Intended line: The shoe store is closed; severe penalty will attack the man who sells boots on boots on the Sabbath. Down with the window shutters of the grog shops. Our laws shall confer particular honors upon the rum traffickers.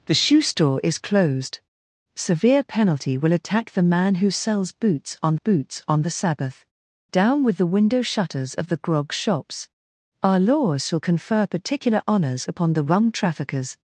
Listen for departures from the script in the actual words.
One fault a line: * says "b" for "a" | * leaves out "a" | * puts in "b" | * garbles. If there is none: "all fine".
all fine